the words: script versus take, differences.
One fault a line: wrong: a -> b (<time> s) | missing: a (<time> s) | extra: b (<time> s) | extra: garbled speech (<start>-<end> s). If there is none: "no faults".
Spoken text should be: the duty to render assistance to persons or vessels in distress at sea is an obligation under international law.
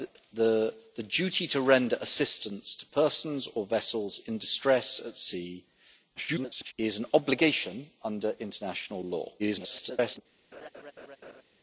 extra: garbled speech (6.2-6.7 s)
extra: garbled speech (9.4-10.2 s)